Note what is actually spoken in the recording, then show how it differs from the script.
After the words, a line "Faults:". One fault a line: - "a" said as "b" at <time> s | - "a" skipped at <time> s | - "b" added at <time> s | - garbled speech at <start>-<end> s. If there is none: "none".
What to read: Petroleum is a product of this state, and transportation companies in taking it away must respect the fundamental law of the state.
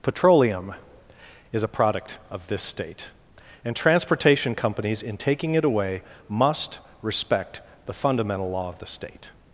Petroleum is a product of this state, and transportation companies in taking it away must respect the fundamental law of the state.
Faults:
none